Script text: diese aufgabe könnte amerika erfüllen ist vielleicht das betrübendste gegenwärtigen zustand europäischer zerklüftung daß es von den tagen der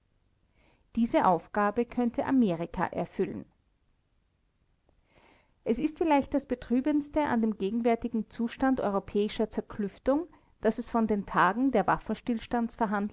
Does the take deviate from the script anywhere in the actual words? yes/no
yes